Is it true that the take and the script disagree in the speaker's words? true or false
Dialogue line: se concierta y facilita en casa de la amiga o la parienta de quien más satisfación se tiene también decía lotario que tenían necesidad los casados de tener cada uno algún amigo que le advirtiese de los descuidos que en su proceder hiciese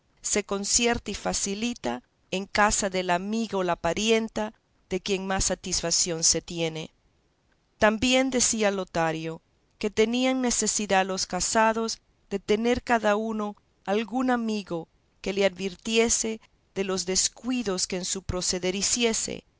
false